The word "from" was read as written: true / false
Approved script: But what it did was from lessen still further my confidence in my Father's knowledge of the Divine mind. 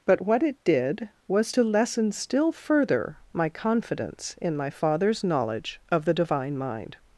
false